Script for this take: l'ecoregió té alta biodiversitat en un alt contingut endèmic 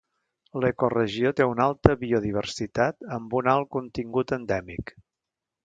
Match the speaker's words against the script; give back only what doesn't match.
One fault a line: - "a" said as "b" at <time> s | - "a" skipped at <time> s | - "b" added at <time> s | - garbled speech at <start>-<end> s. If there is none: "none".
- "una" added at 1.5 s
- "en" said as "amb" at 3.2 s